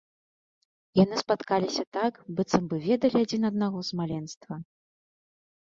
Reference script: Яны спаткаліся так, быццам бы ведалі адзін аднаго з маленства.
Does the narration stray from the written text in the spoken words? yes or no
no